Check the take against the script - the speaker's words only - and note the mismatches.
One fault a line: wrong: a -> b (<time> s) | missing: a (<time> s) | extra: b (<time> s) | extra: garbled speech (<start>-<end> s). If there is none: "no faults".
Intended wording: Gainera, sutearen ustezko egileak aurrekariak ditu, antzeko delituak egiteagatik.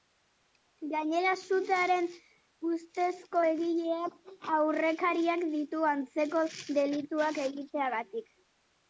no faults